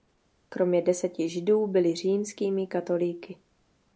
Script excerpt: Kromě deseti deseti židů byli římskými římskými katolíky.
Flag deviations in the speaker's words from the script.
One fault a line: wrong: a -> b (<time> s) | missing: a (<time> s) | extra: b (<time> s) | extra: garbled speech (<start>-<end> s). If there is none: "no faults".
missing: deseti (1.3 s)
missing: římskými (2.7 s)